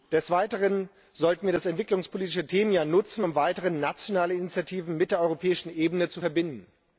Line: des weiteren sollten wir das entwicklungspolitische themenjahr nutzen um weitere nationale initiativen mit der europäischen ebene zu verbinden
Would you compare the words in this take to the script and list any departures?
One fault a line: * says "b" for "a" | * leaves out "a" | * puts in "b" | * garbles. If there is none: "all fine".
all fine